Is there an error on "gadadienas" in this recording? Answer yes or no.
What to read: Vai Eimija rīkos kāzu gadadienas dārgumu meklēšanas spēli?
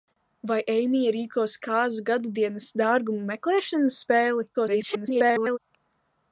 no